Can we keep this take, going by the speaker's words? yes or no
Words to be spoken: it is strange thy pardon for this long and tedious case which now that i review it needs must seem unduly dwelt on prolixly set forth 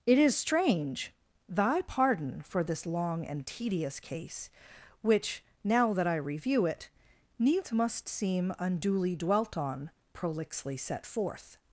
yes